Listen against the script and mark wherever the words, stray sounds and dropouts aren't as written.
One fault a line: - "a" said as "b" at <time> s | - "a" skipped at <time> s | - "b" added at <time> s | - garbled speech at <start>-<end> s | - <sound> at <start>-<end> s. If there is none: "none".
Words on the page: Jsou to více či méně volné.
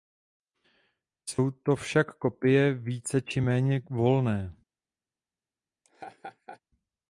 - "však kopie" added at 1.8 s
- laugh at 5.8-6.6 s